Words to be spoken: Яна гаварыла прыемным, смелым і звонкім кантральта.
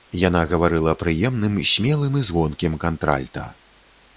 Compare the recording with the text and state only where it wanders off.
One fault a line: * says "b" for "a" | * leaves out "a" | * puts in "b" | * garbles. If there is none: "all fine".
all fine